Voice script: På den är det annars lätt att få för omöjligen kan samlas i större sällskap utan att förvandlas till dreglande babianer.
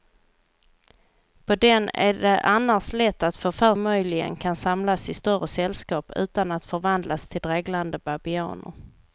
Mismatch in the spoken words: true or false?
false